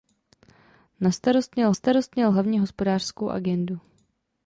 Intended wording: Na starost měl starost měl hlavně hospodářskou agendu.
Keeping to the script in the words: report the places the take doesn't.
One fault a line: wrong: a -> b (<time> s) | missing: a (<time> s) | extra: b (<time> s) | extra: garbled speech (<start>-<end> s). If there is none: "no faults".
no faults